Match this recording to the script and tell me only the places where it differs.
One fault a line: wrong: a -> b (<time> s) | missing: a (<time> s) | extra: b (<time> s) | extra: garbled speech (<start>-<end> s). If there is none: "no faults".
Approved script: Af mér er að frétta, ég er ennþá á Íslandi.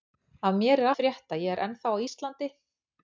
no faults